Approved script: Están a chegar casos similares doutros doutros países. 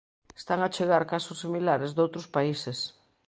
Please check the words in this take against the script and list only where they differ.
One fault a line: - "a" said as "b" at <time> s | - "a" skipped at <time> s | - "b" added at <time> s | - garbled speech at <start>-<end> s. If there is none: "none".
- "doutros" skipped at 2.3 s